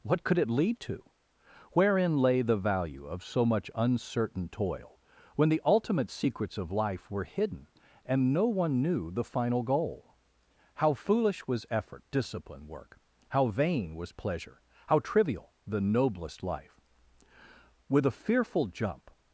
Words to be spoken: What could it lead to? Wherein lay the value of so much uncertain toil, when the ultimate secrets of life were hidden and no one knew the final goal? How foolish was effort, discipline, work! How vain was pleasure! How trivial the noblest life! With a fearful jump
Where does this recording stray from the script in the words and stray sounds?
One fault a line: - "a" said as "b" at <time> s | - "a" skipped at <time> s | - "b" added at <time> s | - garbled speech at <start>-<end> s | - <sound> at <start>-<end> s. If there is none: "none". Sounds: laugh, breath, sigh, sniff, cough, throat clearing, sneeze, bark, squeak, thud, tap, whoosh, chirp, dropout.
none